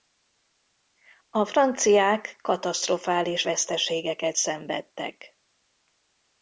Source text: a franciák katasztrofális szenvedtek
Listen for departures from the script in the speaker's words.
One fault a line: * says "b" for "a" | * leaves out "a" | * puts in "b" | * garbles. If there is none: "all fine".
* puts in "veszteségeket"